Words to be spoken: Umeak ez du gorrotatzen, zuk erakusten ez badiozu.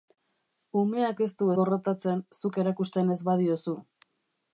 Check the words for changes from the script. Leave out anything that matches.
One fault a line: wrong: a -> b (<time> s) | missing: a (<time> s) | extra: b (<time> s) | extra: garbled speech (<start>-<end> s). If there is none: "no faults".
no faults